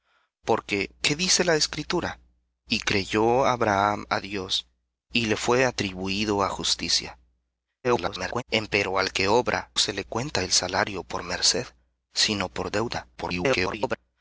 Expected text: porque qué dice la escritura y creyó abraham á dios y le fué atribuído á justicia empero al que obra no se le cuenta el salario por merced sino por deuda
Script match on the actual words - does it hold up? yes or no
no